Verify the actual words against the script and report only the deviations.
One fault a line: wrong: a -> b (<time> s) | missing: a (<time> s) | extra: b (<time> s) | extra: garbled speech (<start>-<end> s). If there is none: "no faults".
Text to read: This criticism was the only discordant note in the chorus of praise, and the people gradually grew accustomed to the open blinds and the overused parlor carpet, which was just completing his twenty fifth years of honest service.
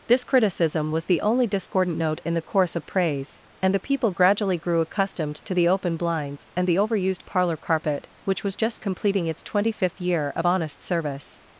wrong: his -> its (9.3 s)
wrong: years -> year (10.0 s)